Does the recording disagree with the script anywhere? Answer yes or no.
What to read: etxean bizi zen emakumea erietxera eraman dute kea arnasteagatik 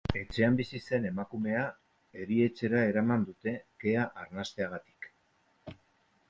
no